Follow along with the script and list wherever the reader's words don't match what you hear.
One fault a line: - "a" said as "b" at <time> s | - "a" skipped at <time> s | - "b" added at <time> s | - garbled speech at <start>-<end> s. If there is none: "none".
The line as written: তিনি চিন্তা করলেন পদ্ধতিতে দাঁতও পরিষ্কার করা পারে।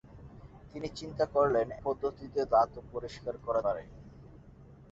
none